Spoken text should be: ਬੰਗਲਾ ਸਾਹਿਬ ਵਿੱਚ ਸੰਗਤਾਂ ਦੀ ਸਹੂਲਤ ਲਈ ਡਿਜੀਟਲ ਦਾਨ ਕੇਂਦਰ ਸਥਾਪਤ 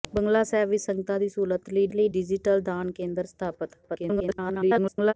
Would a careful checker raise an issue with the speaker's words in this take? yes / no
yes